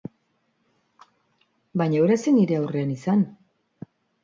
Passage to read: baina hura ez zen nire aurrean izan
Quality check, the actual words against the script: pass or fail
pass